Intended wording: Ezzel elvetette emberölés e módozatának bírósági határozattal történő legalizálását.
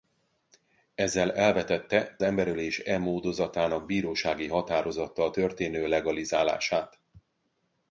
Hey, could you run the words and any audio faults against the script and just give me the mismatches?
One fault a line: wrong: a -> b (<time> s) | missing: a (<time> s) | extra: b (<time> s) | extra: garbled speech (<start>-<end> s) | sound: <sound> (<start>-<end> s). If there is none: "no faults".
no faults